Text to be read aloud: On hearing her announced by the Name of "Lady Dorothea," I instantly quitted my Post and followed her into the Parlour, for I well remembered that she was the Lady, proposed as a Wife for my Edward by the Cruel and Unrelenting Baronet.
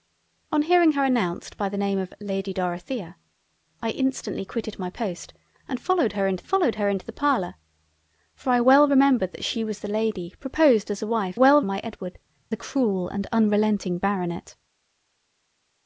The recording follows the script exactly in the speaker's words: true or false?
false